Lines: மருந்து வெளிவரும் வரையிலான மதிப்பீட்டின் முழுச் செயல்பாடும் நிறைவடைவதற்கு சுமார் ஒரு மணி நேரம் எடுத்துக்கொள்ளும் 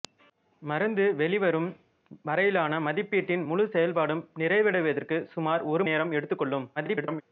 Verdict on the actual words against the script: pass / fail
fail